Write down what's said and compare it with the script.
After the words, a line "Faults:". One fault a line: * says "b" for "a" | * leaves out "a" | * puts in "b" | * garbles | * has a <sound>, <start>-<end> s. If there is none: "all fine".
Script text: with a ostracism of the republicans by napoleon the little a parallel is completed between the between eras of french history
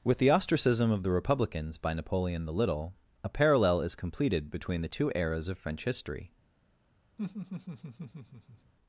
with the ostracism of the republicans by napoleon the little a parallel is completed between the two eras of french history
Faults:
* says "the" for "a"
* says "two" for "between"
* has a laugh, 7.2-8.7 s